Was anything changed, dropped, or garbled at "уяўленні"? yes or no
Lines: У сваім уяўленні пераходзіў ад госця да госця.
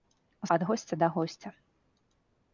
yes